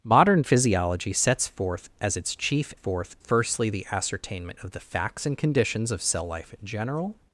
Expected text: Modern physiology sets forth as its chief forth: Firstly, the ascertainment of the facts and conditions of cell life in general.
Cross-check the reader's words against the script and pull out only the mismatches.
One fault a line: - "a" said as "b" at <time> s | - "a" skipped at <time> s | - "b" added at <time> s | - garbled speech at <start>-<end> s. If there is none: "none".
none